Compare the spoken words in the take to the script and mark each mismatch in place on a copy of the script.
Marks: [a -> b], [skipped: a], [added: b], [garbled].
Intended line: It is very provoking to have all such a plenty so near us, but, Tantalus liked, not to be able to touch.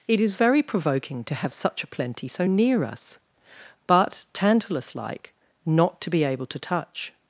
It is very provoking to have [skipped: all] such a plenty so near us, but, Tantalus [liked, -> like] not to be able to touch.